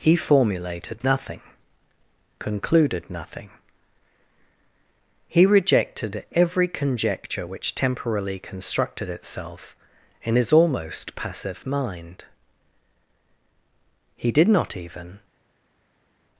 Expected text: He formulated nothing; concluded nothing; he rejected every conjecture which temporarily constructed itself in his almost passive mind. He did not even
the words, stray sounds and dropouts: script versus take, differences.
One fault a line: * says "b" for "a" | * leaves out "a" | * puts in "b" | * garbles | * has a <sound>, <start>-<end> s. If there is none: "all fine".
all fine